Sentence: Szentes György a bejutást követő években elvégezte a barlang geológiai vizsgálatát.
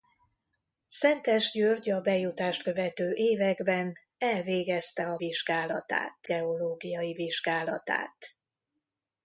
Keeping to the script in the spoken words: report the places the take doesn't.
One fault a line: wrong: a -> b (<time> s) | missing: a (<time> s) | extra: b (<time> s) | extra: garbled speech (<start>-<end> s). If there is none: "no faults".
wrong: barlang -> vizsgálatát (5.2 s)